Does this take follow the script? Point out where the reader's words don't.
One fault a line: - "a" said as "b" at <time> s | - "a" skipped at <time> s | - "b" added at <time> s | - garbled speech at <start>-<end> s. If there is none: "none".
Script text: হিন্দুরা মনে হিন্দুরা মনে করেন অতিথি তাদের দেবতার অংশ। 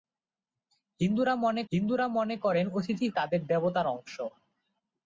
none